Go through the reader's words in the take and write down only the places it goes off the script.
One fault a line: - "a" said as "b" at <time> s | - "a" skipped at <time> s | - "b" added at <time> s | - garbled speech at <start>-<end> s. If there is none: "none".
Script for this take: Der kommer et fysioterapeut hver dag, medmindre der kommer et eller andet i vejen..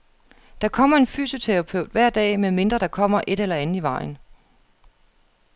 - "et" said as "en" at 1.0 s